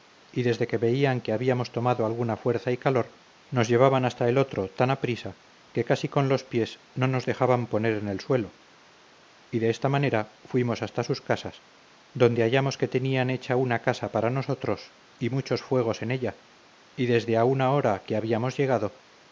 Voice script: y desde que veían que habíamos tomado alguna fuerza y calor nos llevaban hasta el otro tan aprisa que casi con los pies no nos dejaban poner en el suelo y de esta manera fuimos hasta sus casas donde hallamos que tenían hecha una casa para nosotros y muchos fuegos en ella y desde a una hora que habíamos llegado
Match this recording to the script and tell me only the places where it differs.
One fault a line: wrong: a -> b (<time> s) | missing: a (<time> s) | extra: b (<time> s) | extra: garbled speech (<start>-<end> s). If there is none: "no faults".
no faults